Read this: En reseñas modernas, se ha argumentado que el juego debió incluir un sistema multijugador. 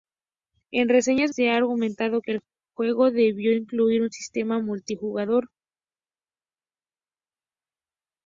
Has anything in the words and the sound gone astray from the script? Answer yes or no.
yes